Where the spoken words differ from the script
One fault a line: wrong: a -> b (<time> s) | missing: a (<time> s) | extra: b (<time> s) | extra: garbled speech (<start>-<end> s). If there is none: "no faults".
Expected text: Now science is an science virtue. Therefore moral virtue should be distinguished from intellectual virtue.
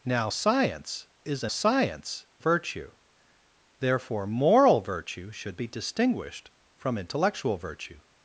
no faults